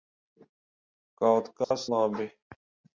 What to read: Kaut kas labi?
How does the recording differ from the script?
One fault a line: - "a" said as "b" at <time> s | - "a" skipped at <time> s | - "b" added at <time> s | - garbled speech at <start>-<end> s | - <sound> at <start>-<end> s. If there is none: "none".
- dropout at 1.6-1.7 s